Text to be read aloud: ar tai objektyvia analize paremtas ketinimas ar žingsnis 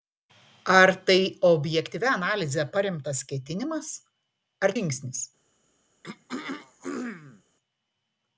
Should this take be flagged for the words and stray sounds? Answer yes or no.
yes